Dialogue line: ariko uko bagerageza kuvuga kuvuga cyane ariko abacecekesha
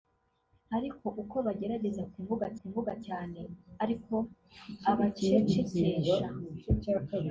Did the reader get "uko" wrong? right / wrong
right